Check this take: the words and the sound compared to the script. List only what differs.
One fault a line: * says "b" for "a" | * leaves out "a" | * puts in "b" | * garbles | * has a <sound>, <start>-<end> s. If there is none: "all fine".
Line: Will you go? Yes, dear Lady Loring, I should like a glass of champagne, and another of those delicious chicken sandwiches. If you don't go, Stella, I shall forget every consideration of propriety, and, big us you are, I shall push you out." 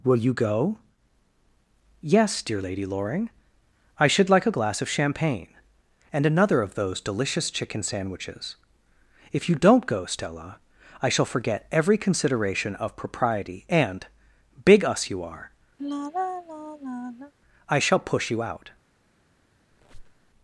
* has a sigh, 15.8-17.3 s
* has a squeak, 19.7-20.3 s